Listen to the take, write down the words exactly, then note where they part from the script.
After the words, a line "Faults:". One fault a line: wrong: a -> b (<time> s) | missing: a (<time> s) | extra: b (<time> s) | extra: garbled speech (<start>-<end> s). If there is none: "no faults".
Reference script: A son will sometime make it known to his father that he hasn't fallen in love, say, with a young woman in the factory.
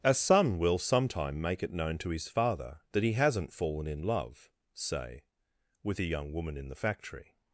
A son will sometime make it known to his father that he hasn't fallen in love, say, with a young woman in the factory.
Faults:
no faults